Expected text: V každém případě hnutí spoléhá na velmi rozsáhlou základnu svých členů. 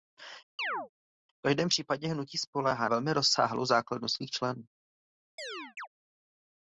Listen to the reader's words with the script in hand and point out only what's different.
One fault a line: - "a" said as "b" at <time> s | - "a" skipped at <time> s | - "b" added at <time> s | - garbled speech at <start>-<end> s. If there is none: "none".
- "na" skipped at 2.9 s